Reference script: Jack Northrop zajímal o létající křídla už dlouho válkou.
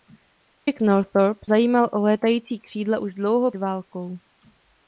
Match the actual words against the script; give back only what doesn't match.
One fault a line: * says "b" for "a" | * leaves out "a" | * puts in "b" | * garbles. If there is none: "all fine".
all fine